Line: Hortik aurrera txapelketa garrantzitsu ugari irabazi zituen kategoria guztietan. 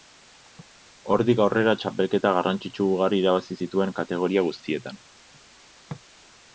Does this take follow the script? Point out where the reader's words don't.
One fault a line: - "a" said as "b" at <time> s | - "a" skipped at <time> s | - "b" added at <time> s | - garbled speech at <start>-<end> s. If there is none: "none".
none